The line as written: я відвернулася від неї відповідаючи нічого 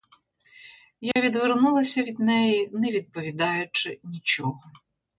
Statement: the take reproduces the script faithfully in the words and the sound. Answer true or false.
false